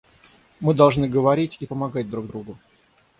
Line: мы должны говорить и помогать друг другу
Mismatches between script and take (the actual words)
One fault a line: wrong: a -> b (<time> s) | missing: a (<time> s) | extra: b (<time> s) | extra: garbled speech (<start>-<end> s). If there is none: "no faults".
no faults